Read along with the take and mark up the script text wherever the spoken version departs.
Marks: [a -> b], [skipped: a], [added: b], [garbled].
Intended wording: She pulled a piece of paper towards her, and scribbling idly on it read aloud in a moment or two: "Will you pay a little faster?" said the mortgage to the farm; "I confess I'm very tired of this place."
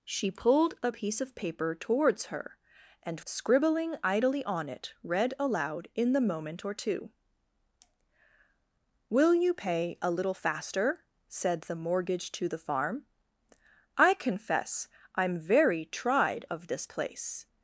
She pulled a piece of paper towards her, and scribbling idly on it read aloud in [a -> the] moment or two: "Will you pay a little faster?" said the mortgage to the farm; "I confess I'm very [tired -> tried] of this place."